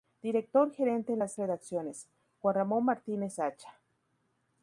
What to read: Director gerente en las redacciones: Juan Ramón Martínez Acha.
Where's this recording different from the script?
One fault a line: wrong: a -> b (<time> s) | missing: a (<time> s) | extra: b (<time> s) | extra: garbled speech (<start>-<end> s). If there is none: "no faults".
no faults